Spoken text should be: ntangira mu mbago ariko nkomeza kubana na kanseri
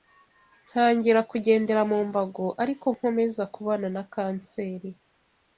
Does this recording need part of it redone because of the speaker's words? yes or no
yes